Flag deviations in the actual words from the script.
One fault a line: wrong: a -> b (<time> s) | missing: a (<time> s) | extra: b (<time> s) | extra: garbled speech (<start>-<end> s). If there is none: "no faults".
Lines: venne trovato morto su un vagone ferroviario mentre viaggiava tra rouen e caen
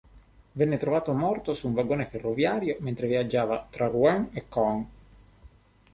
no faults